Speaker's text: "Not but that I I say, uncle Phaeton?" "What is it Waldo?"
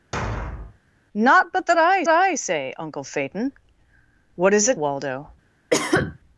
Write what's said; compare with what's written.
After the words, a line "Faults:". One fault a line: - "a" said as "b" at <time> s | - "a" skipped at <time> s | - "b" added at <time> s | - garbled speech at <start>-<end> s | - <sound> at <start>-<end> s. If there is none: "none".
"Not but that I I say, uncle Phaeton?" "What is it Waldo?"
Faults:
- thud at 0.1-0.8 s
- cough at 5.7-6.2 s